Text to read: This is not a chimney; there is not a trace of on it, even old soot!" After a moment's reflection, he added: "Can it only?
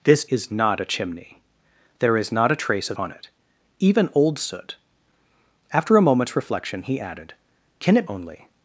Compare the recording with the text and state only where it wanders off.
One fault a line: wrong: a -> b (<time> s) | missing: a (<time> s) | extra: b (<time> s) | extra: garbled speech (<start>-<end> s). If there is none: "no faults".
no faults